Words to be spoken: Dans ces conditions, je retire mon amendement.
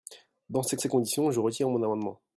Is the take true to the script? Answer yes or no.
no